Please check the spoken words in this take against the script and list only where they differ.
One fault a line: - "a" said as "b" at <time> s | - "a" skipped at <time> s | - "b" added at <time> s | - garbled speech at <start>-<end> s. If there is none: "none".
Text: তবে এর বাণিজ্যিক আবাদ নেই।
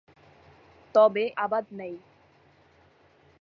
- "এর বাণিজ্যিক" skipped at 1.2 s